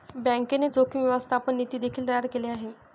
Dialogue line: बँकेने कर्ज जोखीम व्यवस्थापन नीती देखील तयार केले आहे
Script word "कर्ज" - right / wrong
wrong